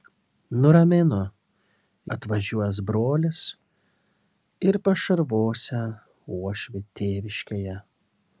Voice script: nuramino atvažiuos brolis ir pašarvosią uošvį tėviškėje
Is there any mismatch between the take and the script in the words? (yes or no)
no